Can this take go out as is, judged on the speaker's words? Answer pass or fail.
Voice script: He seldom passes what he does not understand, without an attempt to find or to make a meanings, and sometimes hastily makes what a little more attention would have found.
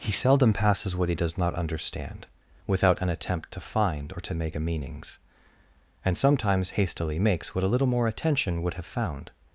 pass